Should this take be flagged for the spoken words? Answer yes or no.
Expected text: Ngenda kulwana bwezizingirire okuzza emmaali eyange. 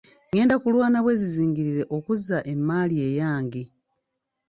no